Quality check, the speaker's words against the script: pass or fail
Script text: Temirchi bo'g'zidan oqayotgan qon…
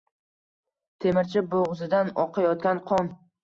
pass